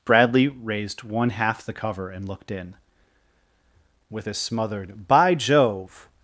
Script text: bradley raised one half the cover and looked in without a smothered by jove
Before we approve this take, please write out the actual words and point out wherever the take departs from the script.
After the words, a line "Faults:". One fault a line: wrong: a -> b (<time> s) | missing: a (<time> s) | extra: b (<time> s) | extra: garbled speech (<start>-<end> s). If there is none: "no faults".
bradley raised one half the cover and looked in with a smothered by jove
Faults:
wrong: without -> with (4.1 s)